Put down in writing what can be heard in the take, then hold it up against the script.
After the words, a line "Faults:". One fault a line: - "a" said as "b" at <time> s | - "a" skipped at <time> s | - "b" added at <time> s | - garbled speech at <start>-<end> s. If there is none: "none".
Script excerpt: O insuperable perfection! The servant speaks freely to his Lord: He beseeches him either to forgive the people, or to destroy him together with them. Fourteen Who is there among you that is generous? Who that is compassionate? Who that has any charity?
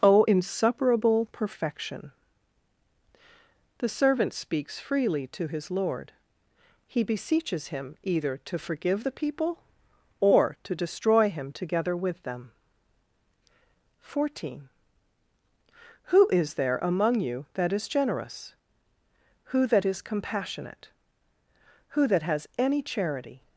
O insuperable perfection! The servant speaks freely to his Lord: He beseeches him either to forgive the people, or to destroy him together with them. Fourteen Who is there among you that is generous? Who that is compassionate? Who that has any charity?
Faults:
none